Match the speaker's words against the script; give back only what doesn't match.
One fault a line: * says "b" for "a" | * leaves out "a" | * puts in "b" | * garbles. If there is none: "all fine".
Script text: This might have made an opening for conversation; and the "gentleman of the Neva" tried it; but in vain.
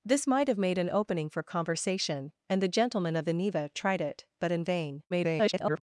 * garbles